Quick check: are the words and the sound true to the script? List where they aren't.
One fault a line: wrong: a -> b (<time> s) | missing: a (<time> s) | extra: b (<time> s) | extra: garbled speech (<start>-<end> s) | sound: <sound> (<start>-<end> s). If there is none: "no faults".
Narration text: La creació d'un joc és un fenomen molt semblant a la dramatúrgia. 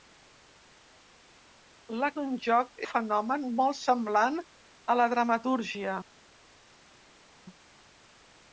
missing: creació (2.1 s)
missing: és un (2.8 s)